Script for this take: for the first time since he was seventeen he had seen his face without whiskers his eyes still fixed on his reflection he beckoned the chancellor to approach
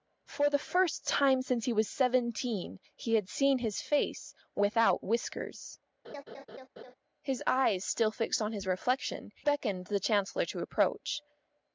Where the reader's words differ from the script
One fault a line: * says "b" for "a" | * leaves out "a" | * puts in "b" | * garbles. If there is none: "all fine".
* leaves out "he"